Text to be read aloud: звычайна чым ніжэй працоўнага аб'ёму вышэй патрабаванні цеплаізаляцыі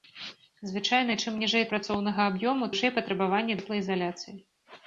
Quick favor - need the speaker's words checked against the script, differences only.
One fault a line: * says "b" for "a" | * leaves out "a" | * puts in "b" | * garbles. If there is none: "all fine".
all fine